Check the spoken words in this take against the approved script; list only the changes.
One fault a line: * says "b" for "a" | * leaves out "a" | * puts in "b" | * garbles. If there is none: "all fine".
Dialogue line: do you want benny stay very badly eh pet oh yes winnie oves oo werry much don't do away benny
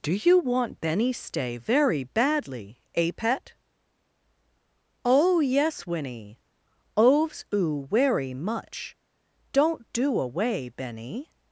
all fine